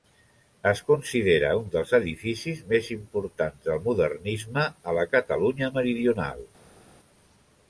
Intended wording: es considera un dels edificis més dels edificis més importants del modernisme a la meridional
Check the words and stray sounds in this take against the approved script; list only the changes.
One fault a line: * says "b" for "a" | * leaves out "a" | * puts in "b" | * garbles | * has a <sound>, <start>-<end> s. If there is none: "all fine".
* leaves out "dels edificis més"
* puts in "catalunya"